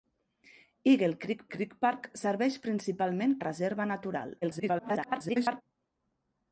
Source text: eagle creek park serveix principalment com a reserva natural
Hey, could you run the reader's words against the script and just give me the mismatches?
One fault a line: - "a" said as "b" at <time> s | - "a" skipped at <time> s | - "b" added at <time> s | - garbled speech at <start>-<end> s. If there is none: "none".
- "creek" added at 1.6 s
- "com" skipped at 3.4 s
- garbled speech at 4.4-5.6 s